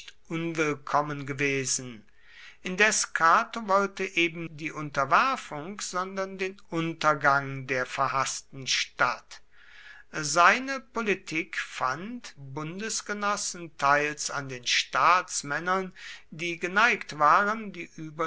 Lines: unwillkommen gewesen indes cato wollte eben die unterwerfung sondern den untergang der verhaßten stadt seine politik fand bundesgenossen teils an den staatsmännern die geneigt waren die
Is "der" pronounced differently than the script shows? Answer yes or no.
no